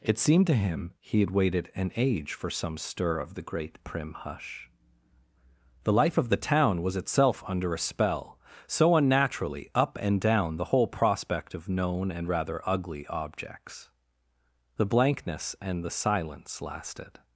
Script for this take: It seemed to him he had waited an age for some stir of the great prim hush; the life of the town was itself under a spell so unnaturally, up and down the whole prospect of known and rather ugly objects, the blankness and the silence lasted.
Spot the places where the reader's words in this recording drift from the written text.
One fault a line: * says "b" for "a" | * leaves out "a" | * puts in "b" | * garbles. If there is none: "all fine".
all fine